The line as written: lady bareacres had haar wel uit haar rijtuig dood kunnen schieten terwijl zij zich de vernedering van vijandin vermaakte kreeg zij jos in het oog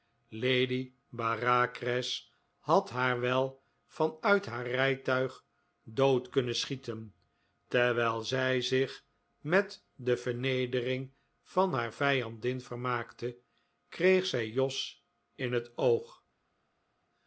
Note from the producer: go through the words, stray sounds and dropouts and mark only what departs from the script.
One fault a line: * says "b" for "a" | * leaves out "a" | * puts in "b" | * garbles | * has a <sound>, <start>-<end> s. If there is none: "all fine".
* puts in "van"
* puts in "met"
* puts in "haar"